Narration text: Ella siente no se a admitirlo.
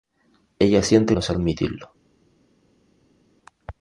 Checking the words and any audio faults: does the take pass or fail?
pass